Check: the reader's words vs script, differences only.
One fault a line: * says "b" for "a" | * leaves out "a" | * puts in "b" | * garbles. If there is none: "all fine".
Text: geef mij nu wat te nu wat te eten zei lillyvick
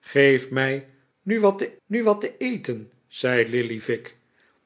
all fine